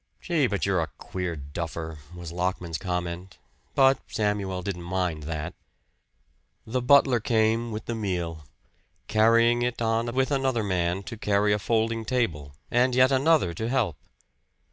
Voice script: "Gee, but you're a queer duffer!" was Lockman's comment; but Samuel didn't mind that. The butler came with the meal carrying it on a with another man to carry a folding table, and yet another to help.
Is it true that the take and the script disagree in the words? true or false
false